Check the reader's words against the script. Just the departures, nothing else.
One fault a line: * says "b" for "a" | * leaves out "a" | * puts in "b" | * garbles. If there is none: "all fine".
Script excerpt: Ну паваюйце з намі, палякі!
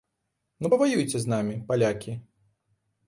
all fine